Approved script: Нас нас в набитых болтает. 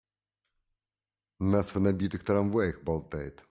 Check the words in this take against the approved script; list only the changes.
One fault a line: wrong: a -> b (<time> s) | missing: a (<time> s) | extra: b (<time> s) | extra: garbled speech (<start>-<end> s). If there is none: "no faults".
missing: нас (1.7 s)
extra: трамваях (2.2 s)